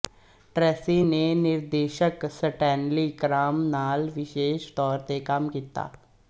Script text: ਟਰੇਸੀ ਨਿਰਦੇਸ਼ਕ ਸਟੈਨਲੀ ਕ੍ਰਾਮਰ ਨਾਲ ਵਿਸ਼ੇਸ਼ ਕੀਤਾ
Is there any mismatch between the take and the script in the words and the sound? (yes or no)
yes